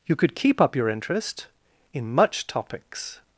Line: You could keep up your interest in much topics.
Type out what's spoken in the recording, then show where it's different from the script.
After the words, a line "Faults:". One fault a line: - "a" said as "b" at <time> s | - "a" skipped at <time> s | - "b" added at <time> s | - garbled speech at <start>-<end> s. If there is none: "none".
You could keep up your interest in much topics.
Faults:
none